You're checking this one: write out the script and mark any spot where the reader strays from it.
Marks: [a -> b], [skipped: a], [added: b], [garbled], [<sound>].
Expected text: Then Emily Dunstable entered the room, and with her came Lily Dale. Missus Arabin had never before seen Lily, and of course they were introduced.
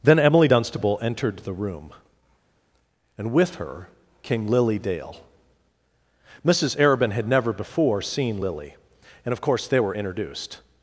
Then Emily Dunstable entered the room, and with her came Lily Dale. Missus Arabin had never before seen Lily, and of course they were introduced.